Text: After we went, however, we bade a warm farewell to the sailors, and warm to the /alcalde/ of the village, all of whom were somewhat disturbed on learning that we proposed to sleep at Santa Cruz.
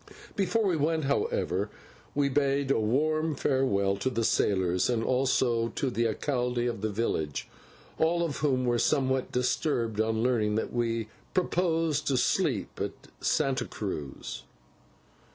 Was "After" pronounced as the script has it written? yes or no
no